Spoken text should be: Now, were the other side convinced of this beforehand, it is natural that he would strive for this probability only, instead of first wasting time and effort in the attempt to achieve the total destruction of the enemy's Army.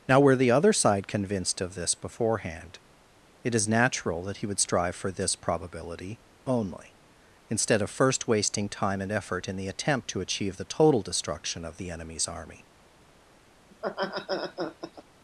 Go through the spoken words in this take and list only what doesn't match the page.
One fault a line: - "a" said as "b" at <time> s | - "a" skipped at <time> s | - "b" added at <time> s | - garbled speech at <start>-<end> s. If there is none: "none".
none